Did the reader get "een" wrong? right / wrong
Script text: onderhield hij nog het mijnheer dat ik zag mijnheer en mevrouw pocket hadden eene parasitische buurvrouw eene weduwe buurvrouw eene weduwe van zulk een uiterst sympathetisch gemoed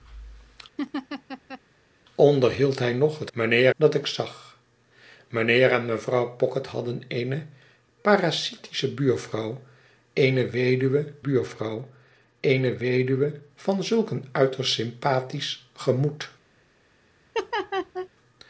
right